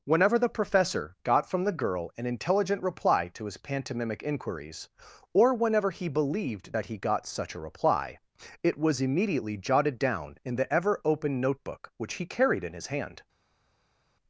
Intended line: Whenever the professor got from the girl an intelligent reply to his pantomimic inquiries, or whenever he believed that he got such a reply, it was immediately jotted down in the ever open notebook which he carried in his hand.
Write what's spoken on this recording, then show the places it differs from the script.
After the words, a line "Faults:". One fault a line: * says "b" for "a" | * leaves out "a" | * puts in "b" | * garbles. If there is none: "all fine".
Whenever the professor got from the girl an intelligent reply to his pantomimic inquiries, or whenever he believed that he got such a reply, it was immediately jotted down in the ever open notebook which he carried in his hand.
Faults:
all fine